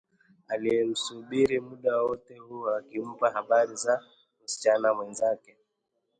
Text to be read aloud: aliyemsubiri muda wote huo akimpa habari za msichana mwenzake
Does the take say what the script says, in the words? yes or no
yes